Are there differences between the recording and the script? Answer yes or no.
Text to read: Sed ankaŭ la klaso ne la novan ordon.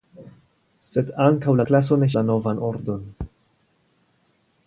no